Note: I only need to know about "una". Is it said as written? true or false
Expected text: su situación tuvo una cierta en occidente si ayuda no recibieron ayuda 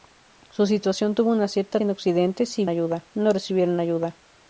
true